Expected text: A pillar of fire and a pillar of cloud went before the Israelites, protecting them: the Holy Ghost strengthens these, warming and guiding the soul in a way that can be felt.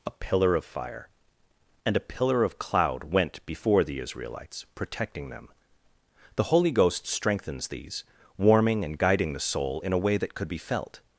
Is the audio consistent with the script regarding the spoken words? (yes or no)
no